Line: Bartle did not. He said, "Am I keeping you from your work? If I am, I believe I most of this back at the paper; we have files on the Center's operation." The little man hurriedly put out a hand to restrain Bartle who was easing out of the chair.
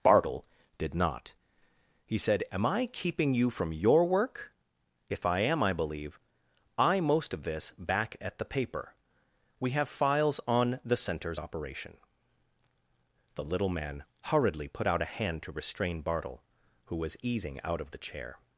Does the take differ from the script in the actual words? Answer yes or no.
no